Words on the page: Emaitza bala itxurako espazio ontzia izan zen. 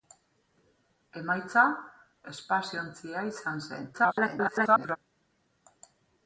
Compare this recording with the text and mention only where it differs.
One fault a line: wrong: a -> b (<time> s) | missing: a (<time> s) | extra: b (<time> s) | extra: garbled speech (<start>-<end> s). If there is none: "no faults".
missing: bala itxurako (1.6 s)
extra: garbled speech (3.9-5.0 s)